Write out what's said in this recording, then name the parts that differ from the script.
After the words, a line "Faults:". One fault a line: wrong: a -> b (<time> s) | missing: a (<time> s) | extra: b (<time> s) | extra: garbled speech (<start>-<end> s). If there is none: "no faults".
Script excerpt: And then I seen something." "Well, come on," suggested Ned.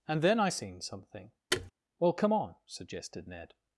And then I seen something." "Well, come on," suggested Ned.
Faults:
no faults